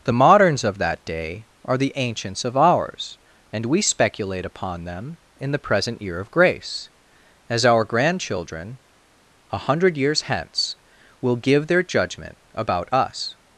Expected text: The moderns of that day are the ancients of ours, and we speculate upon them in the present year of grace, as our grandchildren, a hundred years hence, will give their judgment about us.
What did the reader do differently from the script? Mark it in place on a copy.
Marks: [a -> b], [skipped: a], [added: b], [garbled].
The moderns of that day are the ancients of ours, and we speculate upon them in the present year of grace, as our grandchildren, a hundred years hence, will give their judgment about us.